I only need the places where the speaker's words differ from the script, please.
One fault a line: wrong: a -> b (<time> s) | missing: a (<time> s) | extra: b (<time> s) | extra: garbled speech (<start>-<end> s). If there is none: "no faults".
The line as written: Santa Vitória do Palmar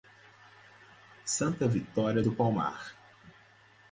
no faults